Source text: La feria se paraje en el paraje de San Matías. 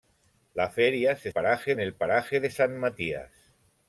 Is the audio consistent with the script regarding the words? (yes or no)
yes